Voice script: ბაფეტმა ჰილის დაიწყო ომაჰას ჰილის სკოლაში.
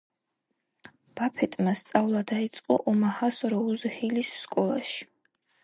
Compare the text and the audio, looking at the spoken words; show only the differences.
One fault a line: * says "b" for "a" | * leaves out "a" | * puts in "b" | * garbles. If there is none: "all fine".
* says "სწავლა" for "ჰილის"
* puts in "როუზ"